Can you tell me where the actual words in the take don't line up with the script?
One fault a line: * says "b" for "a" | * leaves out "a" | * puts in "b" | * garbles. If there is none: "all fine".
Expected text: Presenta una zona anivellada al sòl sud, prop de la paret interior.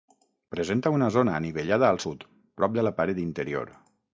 * leaves out "sòl"